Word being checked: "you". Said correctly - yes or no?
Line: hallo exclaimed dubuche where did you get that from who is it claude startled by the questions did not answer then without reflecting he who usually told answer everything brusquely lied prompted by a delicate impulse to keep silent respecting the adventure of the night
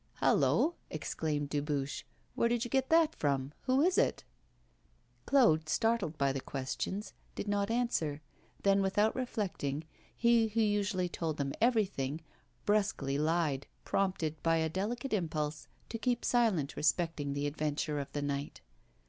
yes